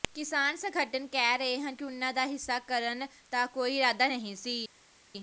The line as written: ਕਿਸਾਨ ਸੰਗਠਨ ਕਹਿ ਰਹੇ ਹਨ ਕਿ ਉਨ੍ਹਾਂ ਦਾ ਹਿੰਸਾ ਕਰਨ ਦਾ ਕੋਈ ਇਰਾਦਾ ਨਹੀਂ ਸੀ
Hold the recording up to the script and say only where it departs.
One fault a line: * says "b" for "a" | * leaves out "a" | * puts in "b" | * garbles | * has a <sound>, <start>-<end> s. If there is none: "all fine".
all fine